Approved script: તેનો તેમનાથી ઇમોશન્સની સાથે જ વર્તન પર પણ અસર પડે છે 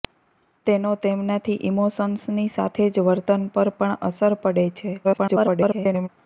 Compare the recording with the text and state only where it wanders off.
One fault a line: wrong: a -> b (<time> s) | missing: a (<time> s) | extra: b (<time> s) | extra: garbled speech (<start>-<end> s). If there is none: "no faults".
extra: garbled speech (5.0-6.1 s)